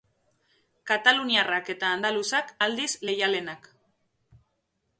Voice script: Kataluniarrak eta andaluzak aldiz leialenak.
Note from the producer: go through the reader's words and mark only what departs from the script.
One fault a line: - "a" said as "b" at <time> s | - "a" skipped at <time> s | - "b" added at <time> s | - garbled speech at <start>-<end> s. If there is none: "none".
none